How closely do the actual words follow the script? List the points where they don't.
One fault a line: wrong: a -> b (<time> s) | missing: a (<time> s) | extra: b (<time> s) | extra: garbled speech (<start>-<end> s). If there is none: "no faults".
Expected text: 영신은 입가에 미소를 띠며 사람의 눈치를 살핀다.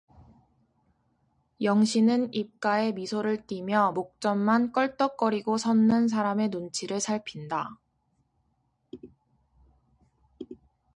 extra: 목젖만 껄떡거리고 섰는 (3.9 s)